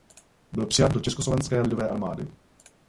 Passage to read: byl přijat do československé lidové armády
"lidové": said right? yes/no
yes